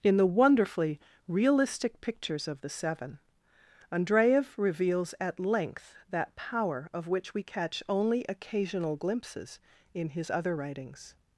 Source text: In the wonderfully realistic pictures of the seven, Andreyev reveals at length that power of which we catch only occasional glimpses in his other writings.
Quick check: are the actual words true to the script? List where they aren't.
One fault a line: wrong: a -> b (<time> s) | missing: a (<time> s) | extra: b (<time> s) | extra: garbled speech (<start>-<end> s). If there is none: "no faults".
no faults